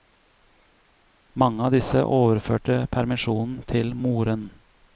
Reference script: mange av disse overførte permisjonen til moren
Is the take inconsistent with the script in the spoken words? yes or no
no